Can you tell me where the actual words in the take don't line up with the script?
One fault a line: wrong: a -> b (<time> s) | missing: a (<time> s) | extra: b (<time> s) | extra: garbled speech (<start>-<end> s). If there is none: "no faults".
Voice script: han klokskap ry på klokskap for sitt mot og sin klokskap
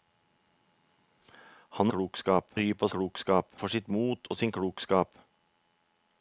no faults